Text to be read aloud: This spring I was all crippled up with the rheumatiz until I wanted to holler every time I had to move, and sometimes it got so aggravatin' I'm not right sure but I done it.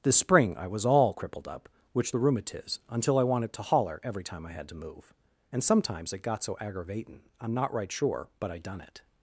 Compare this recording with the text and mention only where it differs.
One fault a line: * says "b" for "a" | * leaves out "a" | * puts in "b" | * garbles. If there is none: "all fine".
* says "which" for "with"